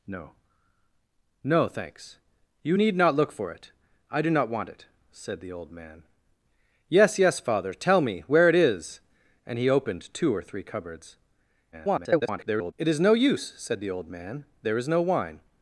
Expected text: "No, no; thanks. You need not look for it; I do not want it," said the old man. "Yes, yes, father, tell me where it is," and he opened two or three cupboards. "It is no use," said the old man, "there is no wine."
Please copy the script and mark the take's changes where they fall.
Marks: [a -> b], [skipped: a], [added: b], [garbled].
"No, no; thanks. You need not look for it; I do not want it," said the old man. "Yes, yes, father, tell me where it is," and he opened two or three cupboards. [garbled] "It is no use," said the old man, "there is no wine."